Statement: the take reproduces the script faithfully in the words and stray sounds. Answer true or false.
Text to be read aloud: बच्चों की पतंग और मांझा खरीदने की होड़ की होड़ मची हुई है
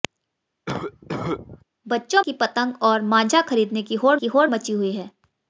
false